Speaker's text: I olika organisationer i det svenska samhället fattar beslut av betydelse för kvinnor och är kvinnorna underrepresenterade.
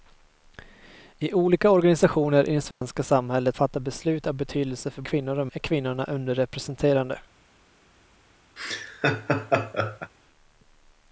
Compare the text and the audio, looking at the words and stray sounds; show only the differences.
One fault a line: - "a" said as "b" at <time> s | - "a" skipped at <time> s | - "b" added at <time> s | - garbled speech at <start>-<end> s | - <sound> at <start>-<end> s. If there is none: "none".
- dropout at 2.7-2.8 s
- laugh at 8.6-10.1 s